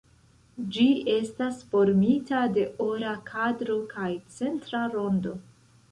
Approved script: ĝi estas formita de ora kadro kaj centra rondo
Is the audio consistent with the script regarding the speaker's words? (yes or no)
yes